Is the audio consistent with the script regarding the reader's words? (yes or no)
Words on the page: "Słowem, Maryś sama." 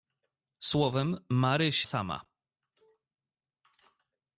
yes